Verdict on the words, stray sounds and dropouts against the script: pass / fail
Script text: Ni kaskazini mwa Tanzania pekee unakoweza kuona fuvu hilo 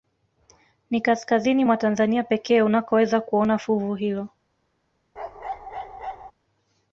fail